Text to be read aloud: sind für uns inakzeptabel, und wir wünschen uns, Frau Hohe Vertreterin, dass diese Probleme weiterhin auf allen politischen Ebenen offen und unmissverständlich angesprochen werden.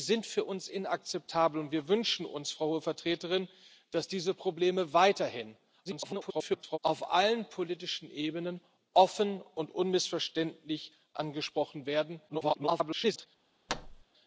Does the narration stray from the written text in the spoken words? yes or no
yes